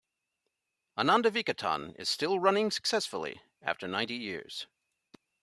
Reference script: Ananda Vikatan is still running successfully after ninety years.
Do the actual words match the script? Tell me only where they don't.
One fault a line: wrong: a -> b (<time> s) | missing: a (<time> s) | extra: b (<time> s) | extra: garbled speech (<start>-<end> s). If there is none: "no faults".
no faults